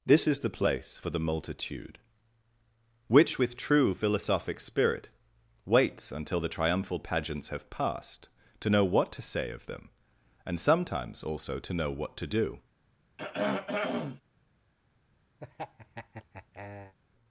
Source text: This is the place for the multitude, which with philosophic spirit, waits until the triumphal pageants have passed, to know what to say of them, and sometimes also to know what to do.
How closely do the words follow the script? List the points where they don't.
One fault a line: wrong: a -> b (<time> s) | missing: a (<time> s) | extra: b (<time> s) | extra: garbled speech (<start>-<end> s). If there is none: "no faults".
extra: true (3.6 s)